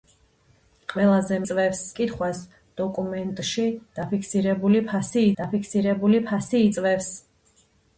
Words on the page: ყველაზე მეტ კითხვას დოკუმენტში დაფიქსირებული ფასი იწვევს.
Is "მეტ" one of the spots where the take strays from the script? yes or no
yes